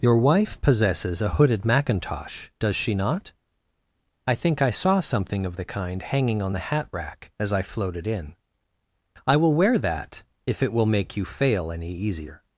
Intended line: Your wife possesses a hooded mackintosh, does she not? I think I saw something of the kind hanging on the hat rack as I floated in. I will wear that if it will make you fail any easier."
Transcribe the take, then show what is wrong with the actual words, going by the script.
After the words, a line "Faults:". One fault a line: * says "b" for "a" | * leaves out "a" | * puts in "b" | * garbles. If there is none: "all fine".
Your wife possesses a hooded mackintosh, does she not? I think I saw something of the kind hanging on the hat rack as I floated in. I will wear that if it will make you fail any easier."
Faults:
all fine